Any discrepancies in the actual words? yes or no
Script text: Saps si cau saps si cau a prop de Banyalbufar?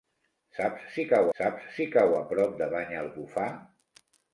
no